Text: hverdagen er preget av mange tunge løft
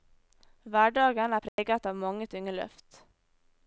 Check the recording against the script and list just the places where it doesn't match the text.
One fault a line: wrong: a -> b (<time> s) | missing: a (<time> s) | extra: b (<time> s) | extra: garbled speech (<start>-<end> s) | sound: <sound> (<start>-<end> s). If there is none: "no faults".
sound: dropout (1.5-1.6 s)